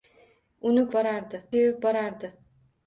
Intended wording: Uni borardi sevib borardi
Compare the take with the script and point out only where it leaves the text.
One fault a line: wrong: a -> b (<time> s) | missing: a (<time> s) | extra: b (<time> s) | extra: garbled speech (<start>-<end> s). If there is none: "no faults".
no faults